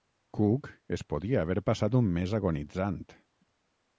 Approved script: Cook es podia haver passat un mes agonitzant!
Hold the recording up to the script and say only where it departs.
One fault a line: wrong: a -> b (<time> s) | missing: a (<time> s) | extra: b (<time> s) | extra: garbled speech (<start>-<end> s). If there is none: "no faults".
no faults